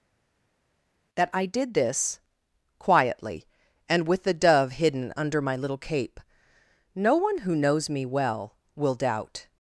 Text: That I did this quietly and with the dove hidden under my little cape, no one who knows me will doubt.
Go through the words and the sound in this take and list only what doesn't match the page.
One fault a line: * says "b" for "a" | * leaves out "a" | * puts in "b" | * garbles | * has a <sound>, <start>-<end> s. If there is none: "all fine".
* puts in "well"